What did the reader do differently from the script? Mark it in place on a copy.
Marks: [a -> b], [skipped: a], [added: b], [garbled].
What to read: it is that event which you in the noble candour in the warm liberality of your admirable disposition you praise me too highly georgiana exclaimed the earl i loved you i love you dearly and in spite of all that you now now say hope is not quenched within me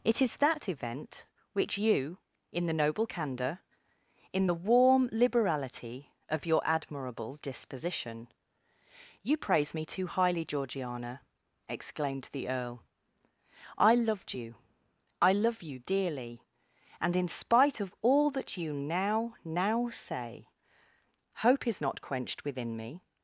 it is that event which you in the noble candour in the warm liberality of your admirable disposition you praise me too highly georgiana exclaimed the earl i loved you i love you dearly and in spite of all that you now now say hope is not quenched within me